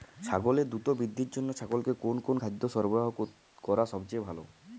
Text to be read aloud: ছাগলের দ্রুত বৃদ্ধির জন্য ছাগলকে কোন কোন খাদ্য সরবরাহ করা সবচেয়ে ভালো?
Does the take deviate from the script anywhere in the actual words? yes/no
no